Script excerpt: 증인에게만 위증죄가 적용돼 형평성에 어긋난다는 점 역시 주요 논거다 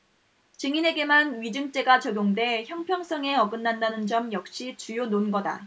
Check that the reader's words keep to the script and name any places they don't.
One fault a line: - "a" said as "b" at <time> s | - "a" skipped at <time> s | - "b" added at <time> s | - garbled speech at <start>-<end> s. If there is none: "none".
none